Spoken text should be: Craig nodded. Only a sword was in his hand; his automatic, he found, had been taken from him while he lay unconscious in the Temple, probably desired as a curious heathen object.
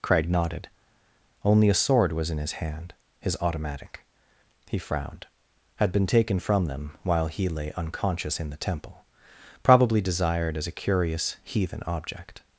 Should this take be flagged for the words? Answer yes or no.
yes